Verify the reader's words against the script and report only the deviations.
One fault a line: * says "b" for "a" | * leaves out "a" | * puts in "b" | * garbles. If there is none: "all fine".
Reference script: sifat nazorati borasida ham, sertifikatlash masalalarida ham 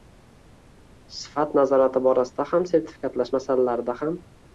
all fine